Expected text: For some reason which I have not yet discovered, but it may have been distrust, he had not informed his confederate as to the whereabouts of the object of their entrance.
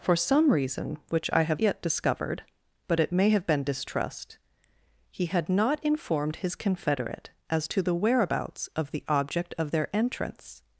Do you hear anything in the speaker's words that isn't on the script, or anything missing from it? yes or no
yes